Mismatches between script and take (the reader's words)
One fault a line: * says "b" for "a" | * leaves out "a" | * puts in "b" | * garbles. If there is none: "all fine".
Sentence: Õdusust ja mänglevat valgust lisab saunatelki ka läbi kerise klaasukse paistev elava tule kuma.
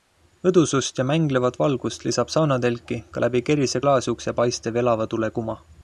all fine